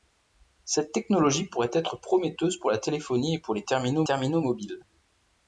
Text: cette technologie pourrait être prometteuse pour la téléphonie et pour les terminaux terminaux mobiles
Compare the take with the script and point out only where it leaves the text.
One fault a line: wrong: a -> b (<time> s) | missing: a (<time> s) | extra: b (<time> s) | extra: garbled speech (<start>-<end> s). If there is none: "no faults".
no faults